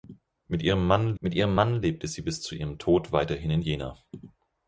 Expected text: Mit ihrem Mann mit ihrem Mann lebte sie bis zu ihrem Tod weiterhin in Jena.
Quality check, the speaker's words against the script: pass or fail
pass